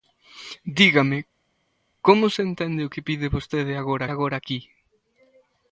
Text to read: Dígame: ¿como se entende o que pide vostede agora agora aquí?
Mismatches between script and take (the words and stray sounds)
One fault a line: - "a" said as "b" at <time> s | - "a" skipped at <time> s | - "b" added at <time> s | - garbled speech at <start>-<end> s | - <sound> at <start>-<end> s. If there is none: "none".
none